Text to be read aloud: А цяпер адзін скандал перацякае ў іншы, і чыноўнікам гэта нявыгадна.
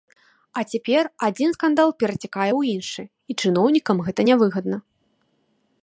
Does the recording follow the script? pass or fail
pass